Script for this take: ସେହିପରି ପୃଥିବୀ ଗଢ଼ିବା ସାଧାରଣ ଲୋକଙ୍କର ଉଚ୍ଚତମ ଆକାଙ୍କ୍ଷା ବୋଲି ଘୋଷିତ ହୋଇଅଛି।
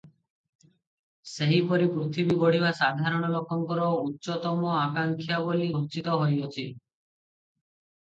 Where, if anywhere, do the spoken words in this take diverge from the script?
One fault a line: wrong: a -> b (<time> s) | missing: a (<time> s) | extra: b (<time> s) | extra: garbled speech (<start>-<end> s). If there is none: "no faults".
no faults